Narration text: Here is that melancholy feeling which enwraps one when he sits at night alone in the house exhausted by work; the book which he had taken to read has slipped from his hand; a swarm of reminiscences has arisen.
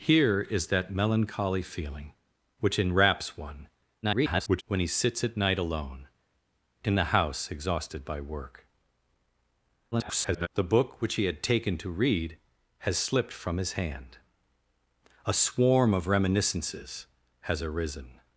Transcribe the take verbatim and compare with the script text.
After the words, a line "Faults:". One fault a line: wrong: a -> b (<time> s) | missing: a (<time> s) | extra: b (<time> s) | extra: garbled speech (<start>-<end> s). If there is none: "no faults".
Here is that melancholy feeling which enwraps one [garbled] when he sits at night alone in the house exhausted by work; [garbled] the book which he had taken to read has slipped from his hand; a swarm of reminiscences has arisen.
Faults:
extra: garbled speech (4.0-4.6 s)
extra: garbled speech (9.9-10.5 s)